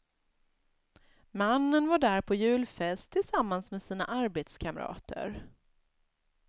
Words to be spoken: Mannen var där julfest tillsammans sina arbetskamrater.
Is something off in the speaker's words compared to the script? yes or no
yes